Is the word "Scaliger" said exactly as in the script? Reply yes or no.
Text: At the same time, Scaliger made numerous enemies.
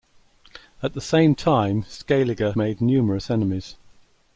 yes